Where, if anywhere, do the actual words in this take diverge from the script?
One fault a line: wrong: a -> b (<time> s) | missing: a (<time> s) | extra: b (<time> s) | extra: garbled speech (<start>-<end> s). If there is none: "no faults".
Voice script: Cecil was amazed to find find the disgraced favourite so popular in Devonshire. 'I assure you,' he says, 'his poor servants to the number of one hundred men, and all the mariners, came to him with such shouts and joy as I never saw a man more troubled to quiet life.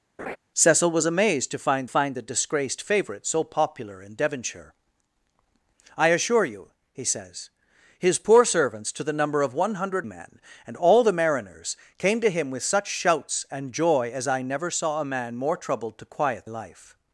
no faults